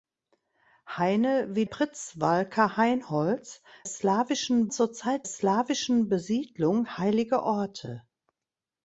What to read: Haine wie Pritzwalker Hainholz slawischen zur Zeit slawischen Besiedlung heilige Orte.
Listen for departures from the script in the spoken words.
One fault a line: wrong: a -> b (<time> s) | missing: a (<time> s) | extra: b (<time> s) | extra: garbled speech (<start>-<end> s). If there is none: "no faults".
no faults